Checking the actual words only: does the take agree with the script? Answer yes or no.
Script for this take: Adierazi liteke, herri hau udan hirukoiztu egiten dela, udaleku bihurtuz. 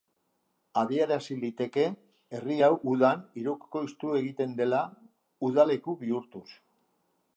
yes